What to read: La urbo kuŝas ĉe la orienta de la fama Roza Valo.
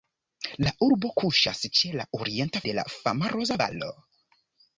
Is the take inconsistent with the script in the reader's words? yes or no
no